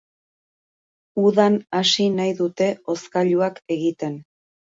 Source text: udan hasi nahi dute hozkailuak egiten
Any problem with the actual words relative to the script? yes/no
no